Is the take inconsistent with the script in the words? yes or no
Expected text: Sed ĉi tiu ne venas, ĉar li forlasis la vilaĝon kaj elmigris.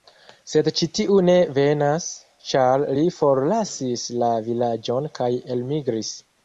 no